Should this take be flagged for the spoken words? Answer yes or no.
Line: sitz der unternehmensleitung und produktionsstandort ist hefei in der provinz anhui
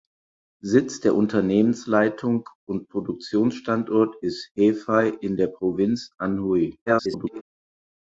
yes